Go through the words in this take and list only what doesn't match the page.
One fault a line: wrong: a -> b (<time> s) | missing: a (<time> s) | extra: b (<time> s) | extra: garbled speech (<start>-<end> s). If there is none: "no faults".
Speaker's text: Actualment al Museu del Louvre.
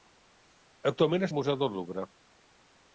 no faults